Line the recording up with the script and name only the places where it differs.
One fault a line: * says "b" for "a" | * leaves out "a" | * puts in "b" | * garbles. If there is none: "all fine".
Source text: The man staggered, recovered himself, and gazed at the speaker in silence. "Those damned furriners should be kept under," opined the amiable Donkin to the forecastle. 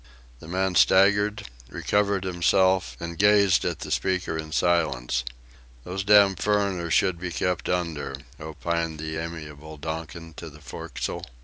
all fine